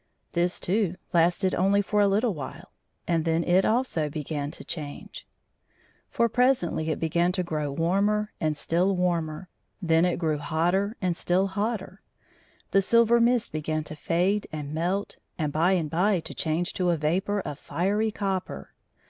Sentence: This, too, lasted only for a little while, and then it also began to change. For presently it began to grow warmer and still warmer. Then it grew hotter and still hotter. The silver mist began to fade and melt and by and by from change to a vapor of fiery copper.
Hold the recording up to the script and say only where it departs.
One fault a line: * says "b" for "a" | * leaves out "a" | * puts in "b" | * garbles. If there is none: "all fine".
* says "to" for "from"